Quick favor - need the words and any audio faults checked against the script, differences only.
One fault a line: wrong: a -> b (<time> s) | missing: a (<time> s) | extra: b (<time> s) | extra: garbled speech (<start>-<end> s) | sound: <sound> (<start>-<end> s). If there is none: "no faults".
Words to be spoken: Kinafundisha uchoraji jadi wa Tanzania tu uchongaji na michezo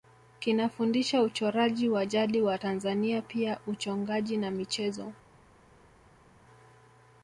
extra: wa (1.9 s)
wrong: tu -> pia (3.2 s)